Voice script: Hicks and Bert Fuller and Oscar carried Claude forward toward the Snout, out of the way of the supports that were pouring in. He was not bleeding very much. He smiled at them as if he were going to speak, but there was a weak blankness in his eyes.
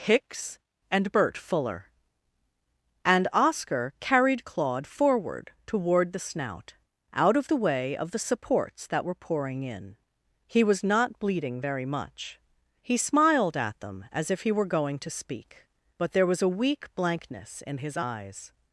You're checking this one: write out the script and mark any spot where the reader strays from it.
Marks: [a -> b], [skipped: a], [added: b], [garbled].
Hicks and Bert Fuller and Oscar carried Claude forward toward the Snout, out of the way of the supports that were pouring in. He was not bleeding very much. He smiled at them as if he were going to speak, but there was a weak blankness in his eyes.